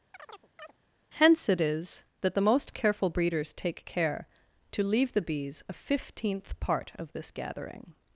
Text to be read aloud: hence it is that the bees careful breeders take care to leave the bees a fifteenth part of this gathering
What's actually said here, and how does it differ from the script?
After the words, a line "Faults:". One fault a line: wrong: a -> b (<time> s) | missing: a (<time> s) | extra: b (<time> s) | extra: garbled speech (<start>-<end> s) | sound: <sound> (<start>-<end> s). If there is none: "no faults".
hence it is that the most careful breeders take care to leave the bees a fifteenth part of this gathering
Faults:
sound: chirp (0.1-0.7 s)
wrong: bees -> most (2.4 s)